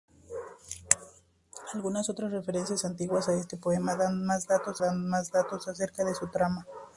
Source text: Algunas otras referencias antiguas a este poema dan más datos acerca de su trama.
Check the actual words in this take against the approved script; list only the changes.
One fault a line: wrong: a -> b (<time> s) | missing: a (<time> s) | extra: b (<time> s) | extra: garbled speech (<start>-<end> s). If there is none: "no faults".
extra: dan más datos (4.8 s)